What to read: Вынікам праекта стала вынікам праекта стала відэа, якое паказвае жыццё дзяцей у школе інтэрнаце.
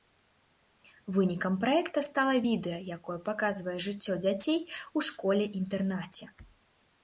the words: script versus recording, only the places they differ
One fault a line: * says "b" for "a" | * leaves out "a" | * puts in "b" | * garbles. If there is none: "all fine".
* leaves out "вынікам праекта стала"